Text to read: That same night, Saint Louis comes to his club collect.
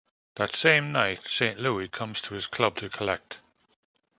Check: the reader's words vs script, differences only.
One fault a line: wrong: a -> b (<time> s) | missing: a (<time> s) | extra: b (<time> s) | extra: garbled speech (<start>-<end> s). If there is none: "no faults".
extra: to (2.8 s)